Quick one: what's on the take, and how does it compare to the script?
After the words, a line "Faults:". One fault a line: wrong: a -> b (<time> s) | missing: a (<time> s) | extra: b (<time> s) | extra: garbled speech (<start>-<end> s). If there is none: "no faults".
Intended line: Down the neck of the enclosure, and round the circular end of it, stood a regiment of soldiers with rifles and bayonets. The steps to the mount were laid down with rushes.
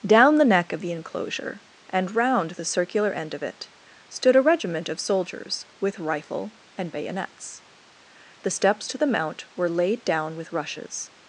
Down the neck of the enclosure, and round the circular end of it, stood a regiment of soldiers with rifle and bayonets. The steps to the mount were laid down with rushes.
Faults:
wrong: rifles -> rifle (6.0 s)